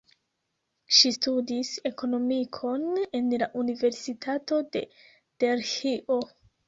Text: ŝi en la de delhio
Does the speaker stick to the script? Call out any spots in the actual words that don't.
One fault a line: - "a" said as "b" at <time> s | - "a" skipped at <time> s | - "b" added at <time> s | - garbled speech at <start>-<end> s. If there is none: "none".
- "studis ekonomikon" added at 1.1 s
- "universitato" added at 3.6 s